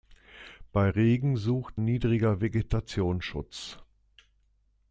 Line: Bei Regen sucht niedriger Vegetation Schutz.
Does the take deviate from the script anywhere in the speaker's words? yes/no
no